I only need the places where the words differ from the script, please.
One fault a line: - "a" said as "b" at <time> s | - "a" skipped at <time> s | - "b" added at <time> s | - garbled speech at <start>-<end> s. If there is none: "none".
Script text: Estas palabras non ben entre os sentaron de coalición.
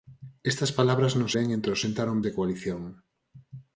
none